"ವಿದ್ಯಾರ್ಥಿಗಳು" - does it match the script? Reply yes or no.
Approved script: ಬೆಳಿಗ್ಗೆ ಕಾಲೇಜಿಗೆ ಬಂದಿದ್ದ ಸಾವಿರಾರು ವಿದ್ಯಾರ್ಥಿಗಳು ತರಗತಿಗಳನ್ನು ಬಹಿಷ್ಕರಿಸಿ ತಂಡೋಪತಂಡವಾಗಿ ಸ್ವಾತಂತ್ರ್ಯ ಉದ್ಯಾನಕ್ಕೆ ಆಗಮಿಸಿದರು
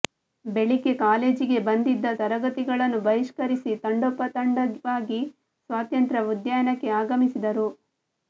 no